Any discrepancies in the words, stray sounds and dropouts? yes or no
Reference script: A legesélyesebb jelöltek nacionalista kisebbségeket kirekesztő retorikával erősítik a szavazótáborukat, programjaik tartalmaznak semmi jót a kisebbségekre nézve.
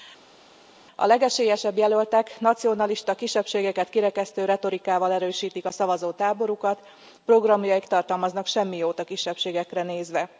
no